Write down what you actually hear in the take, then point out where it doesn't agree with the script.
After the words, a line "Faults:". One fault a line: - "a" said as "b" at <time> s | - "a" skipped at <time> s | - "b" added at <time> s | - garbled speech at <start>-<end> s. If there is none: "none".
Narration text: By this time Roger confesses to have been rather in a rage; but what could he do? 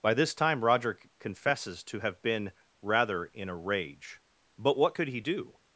By this time Roger confesses to have been rather in a rage; but what could he do?
Faults:
none